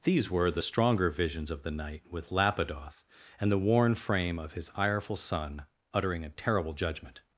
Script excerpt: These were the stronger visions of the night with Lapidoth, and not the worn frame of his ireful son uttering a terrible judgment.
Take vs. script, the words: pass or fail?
fail